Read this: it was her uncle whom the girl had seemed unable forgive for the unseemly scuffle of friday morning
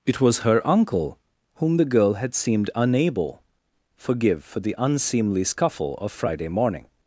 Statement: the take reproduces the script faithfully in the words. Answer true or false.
true